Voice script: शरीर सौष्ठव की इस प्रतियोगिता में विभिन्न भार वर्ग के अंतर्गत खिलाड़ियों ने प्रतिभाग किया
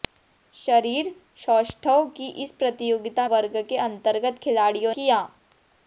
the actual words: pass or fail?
fail